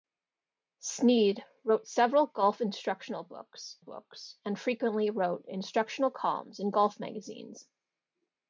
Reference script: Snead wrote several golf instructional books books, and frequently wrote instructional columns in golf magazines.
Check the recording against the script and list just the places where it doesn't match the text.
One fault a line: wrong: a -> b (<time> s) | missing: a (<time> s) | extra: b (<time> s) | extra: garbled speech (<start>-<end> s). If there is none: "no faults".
no faults